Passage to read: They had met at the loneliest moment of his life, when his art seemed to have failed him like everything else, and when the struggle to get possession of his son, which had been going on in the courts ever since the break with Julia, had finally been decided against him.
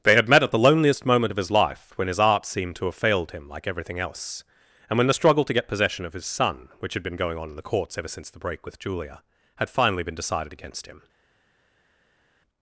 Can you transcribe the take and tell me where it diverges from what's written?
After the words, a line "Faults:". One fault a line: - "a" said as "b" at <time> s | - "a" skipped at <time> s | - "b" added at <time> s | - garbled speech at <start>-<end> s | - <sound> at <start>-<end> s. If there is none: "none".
They had met at the loneliest moment of his life, when his art seemed to have failed him like everything else, and when the struggle to get possession of his son, which had been going on in the courts ever since the break with Julia, had finally been decided against him.
Faults:
none